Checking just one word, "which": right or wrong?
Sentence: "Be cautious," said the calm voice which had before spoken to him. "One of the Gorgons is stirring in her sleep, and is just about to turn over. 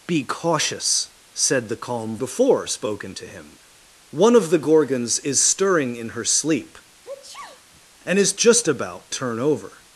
wrong